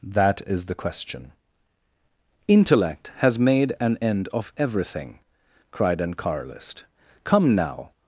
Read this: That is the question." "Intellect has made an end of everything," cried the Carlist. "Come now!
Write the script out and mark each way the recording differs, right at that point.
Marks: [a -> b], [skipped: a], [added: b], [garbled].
That is the question." "Intellect has made an end of everything," cried [the -> an] Carlist. "Come now!